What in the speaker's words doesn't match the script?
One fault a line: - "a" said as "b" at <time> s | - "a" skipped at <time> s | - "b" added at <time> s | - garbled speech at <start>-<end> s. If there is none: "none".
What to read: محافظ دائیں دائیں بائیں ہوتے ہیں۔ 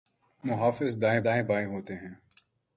none